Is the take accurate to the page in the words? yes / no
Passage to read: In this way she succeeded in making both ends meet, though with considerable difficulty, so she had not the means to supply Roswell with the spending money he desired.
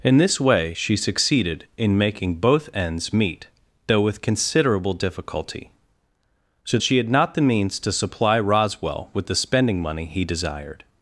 yes